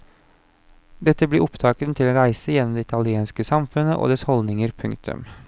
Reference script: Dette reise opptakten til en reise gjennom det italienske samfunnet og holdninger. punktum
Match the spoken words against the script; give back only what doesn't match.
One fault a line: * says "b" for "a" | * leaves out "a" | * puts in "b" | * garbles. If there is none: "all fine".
* says "blir" for "reise"
* puts in "dets"